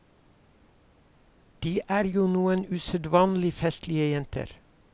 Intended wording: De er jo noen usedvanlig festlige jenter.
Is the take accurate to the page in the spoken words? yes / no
yes